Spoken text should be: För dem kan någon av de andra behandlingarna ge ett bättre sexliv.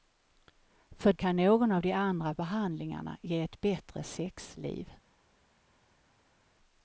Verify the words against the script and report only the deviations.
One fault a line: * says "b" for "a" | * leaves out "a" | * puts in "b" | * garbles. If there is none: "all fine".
* leaves out "dem"